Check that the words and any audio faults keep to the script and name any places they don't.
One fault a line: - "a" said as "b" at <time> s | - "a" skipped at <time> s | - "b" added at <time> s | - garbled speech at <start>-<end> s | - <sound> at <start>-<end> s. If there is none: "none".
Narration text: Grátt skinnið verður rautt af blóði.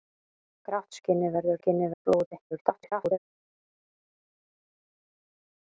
- "rautt" said as "skinnið" at 1.6 s
- garbled speech at 2.5-3.2 s